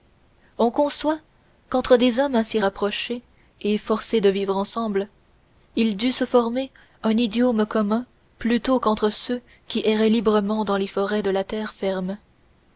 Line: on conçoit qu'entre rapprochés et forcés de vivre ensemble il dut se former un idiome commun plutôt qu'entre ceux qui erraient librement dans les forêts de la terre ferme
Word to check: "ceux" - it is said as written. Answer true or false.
true